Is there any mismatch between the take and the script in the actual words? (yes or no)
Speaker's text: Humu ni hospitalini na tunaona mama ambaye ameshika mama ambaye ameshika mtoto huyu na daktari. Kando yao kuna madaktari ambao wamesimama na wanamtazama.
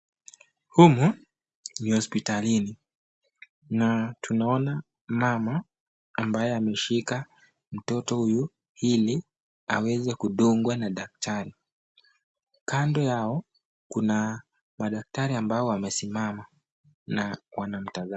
yes